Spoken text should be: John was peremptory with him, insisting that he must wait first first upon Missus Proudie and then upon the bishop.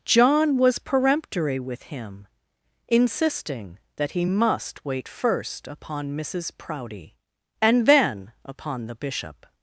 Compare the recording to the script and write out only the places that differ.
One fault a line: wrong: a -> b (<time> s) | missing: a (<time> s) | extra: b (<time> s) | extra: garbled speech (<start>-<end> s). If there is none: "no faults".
missing: first (5.7 s)